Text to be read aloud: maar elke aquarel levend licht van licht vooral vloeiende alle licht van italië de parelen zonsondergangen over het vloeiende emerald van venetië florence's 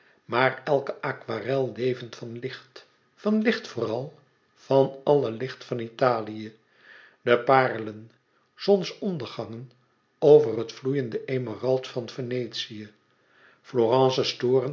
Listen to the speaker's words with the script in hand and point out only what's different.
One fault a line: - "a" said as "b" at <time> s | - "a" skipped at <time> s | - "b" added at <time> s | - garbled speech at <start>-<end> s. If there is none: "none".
- "van" added at 2.1 s
- "vloeiende" said as "van" at 4.5 s